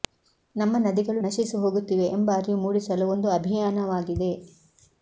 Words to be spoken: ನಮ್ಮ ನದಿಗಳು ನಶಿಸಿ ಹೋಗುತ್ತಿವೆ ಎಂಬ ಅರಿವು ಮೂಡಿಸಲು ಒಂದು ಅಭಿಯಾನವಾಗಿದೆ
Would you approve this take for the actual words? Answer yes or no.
yes